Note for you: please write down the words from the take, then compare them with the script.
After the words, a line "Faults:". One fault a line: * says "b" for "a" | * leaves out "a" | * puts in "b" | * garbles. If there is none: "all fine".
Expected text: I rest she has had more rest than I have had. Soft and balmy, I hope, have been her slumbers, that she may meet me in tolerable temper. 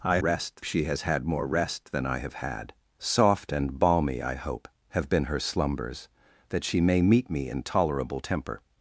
I rest she has had more rest than I have had. Soft and balmy, I hope, have been her slumbers, that she may meet me in tolerable temper.
Faults:
all fine